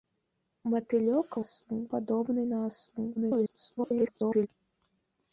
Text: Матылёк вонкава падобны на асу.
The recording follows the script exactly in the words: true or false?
false